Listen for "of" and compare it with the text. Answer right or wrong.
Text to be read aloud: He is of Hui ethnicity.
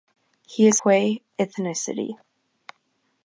wrong